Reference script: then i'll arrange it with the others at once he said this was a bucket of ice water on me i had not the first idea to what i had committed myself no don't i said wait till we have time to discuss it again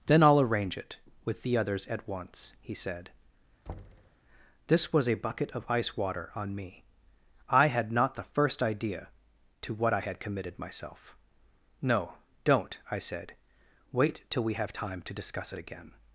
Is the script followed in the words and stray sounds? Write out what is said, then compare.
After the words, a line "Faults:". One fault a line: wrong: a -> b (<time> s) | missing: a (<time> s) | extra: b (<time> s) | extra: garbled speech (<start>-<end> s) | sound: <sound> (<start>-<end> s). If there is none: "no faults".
then i'll arrange it with the others at once he said this was a bucket of ice water on me i had not the first idea to what i had committed myself no don't i said wait till we have time to discuss it again
Faults:
sound: thud (3.7-4.2 s)